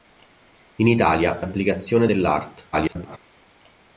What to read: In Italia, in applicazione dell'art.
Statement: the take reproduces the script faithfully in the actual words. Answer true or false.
false